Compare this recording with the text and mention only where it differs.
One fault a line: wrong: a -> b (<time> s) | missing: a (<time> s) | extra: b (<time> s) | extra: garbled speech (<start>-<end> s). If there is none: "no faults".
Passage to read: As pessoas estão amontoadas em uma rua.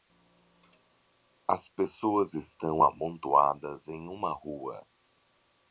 no faults